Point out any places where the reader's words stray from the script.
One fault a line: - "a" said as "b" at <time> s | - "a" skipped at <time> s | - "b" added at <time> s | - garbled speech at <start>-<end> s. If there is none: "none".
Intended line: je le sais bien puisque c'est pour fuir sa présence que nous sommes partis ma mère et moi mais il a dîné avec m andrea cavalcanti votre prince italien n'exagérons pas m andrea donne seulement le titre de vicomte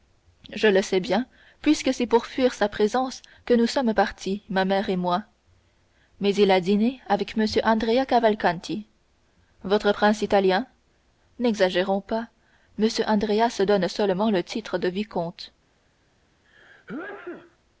- "se" added at 13.5 s